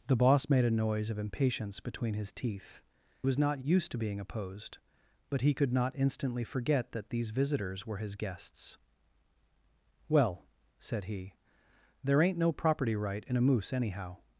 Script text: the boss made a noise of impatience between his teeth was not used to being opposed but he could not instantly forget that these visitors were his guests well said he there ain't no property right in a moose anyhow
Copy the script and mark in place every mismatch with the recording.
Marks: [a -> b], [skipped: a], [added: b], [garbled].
the boss made a noise of impatience between his teeth was not used to being opposed but he could not instantly forget that these visitors were his guests well said he there ain't no property right in a moose anyhow